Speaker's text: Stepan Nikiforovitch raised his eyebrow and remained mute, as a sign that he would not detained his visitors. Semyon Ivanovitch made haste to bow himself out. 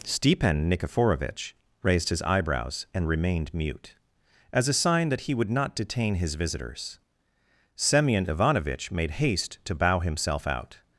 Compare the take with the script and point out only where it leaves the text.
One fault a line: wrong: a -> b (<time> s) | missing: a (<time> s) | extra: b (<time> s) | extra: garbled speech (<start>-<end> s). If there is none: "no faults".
wrong: eyebrow -> eyebrows (2.2 s)
wrong: detained -> detain (5.8 s)